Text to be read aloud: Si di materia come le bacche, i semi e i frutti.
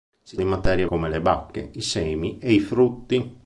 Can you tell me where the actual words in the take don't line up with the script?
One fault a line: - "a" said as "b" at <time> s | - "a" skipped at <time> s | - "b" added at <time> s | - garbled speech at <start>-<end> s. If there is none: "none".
none